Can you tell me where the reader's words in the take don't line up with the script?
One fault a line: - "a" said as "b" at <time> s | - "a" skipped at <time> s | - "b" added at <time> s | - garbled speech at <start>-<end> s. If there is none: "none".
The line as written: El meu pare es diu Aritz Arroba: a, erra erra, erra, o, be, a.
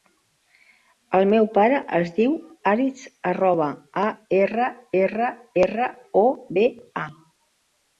none